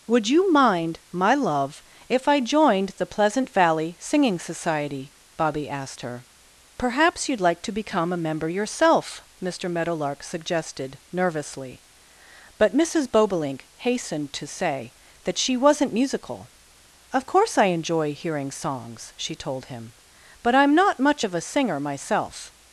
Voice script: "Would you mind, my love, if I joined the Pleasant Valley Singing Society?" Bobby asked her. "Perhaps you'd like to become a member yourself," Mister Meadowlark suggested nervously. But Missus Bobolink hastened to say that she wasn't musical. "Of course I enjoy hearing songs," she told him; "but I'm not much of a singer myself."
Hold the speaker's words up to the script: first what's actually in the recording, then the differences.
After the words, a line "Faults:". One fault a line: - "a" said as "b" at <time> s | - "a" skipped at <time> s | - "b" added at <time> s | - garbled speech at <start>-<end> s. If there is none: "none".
"Would you mind, my love, if I joined the Pleasant Valley Singing Society?" Bobby asked her. "Perhaps you'd like to become a member yourself," Mister Meadowlark suggested nervously. But Missus Bobolink hastened to say that she wasn't musical. "Of course I enjoy hearing songs," she told him; "but I'm not much of a singer myself."
Faults:
none